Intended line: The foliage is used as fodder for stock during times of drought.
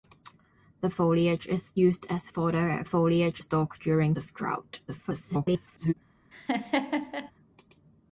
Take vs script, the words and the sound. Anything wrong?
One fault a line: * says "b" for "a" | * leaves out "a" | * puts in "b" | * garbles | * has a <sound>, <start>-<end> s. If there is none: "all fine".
* says "foliage" for "for"
* leaves out "times"
* garbles
* has a laugh, 6.3-7.3 s